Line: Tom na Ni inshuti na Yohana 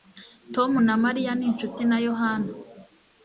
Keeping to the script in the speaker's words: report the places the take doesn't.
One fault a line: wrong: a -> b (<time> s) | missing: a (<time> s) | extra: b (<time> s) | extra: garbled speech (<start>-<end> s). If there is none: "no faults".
extra: Mariya (1.0 s)